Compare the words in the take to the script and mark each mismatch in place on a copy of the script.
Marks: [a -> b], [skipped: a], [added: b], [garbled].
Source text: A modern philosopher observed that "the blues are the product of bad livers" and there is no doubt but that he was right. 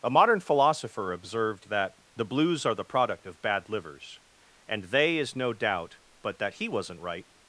A modern philosopher observed that "the blues are the product of bad livers" and [there -> they] is no doubt but that he [was -> wasn't] right.